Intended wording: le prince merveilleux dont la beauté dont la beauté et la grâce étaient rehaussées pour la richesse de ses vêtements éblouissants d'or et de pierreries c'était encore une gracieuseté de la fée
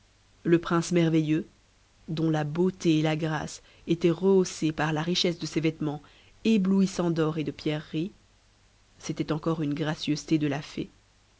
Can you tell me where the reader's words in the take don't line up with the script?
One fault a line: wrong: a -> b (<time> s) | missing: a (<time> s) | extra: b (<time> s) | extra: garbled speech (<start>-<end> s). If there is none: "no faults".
missing: dont la beauté (3.0 s)
wrong: pour -> par (4.7 s)